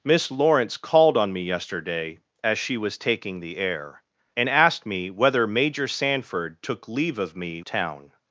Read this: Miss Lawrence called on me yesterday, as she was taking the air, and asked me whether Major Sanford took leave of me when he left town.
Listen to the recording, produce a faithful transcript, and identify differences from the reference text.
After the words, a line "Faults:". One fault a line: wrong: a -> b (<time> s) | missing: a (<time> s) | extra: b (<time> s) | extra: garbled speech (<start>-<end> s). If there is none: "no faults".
Miss Lawrence called on me yesterday, as she was taking the air, and asked me whether Major Sanford took leave of me town.
Faults:
missing: when he left (7.6 s)